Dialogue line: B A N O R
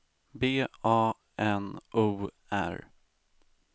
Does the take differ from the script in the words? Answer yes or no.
no